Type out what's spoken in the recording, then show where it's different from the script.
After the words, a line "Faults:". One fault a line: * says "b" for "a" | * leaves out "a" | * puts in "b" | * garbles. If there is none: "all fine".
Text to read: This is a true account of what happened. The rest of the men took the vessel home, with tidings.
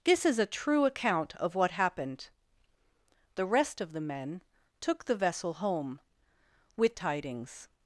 This is a true account of what happened. The rest of the men took the vessel home, with tidings.
Faults:
all fine